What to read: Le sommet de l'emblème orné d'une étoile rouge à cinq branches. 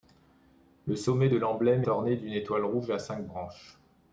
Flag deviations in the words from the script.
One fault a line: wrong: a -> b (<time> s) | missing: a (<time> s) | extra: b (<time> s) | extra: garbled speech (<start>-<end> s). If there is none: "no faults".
no faults